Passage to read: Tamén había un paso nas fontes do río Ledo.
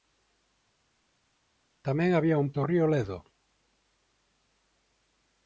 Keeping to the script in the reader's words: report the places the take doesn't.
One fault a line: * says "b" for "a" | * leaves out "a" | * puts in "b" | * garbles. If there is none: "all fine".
* leaves out "paso nas fontes"